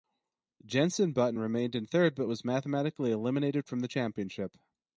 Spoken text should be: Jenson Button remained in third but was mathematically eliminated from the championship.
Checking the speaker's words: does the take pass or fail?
pass